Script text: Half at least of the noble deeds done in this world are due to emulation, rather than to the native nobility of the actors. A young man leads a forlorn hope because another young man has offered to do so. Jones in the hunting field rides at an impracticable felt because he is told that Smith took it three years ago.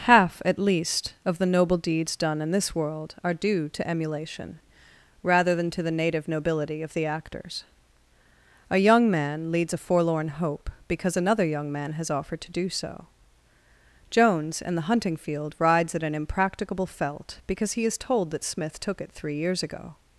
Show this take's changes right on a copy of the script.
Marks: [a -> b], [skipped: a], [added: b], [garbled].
Half at least of the noble deeds done in this world are due to emulation, rather than to the native nobility of the actors. A young man leads a forlorn hope because another young man has offered to do so. Jones in the hunting field rides at an impracticable felt because he is told that Smith took it three years ago.